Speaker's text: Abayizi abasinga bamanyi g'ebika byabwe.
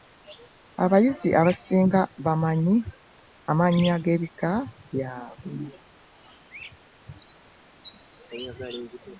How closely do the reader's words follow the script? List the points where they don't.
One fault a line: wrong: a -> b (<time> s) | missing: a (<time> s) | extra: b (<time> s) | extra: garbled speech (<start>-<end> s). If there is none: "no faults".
extra: amannya (3.5 s)